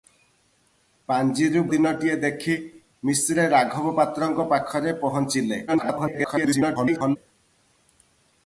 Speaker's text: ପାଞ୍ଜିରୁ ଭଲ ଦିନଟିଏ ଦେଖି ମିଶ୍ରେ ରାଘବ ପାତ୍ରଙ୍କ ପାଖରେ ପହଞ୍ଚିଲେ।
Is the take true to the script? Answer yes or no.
no